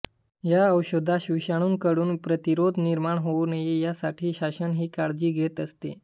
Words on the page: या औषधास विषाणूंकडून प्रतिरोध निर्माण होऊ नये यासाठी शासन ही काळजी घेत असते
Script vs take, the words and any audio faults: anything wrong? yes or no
no